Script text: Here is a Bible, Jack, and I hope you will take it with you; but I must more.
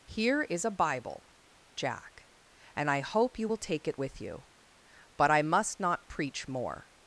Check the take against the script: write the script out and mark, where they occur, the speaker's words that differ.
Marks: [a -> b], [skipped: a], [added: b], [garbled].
Here is a Bible, Jack, and I hope you will take it with you; but I must [added: not preach] more.